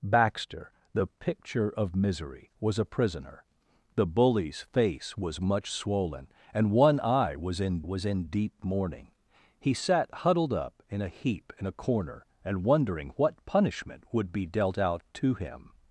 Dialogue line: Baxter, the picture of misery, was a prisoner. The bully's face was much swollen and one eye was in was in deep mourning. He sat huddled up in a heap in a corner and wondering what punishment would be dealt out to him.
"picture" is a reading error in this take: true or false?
false